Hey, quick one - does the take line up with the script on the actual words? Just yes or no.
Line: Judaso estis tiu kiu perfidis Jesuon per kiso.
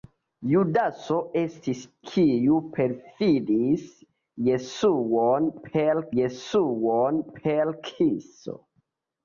no